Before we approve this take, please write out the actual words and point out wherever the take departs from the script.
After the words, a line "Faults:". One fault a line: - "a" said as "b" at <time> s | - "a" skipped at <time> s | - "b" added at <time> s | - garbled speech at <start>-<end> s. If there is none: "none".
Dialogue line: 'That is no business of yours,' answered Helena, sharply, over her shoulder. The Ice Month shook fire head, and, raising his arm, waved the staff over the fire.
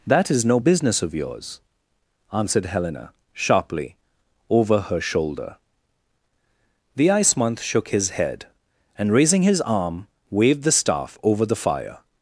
'That is no business of yours,' answered Helena, sharply, over her shoulder. The Ice Month shook his head, and, raising his arm, waved the staff over the fire.
Faults:
- "fire" said as "his" at 7.9 s